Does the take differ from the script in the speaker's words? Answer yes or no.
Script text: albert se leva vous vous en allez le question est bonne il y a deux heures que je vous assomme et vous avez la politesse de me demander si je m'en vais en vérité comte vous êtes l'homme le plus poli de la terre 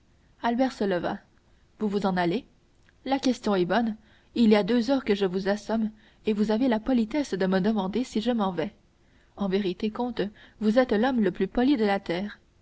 yes